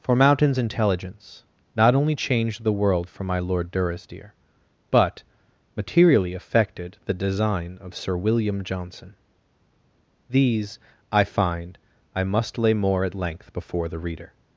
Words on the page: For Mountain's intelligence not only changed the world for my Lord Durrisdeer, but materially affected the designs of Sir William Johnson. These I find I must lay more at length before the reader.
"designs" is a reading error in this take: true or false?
true